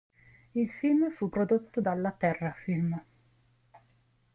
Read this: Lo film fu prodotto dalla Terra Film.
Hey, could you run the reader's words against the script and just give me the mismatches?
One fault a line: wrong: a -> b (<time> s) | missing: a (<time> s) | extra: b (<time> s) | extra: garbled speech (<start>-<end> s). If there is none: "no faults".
wrong: Lo -> Il (0.6 s)